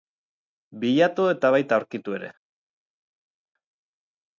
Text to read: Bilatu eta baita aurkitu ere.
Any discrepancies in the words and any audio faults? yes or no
no